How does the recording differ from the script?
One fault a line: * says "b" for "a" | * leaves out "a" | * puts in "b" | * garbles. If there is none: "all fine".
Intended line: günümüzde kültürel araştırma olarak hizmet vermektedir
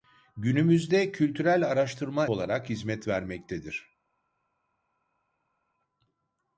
all fine